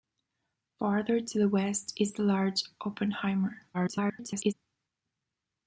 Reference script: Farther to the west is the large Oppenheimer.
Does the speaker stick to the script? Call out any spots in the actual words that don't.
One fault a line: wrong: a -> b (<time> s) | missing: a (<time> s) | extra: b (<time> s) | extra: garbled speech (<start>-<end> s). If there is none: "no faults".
extra: garbled speech (3.7-4.5 s)